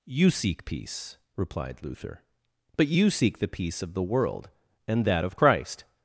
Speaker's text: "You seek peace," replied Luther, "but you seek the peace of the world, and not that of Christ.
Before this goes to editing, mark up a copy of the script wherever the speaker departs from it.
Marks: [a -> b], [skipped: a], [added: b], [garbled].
"You seek peace," replied Luther, "but you seek the peace of the world, and [skipped: not] that of Christ.